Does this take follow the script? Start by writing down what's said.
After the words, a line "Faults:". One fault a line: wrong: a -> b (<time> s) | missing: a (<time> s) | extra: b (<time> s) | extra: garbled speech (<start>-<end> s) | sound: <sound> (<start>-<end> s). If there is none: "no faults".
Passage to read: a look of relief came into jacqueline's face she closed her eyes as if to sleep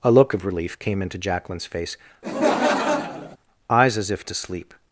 a look of relief came into jacqueline's face eyes as if to sleep
Faults:
missing: she closed her (1.9 s)
sound: laugh (2.2-3.4 s)